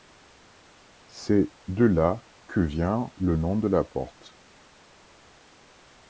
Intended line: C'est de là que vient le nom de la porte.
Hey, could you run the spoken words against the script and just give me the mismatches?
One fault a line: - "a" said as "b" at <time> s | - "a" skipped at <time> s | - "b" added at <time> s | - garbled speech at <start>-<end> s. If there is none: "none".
none